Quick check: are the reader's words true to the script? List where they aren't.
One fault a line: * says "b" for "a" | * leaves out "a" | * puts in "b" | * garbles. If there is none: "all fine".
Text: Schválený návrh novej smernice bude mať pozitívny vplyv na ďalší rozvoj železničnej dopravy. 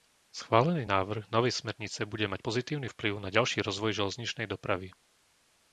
all fine